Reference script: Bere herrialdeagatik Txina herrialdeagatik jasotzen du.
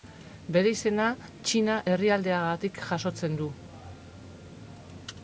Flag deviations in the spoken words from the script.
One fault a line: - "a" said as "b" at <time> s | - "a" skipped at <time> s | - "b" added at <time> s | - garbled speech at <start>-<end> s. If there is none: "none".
- "herrialdeagatik" said as "izena" at 0.8 s